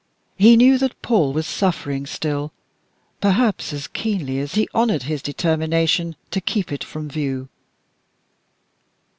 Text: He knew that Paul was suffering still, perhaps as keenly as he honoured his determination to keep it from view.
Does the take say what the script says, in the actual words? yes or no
yes